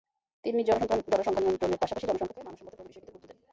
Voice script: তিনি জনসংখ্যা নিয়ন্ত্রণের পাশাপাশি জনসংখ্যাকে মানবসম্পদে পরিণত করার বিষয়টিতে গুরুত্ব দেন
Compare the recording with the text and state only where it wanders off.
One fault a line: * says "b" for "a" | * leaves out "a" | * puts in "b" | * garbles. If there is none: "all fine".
* leaves out "করার"